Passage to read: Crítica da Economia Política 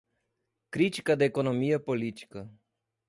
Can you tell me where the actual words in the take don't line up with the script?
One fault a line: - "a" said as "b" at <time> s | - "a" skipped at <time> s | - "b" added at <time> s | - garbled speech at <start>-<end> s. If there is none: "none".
none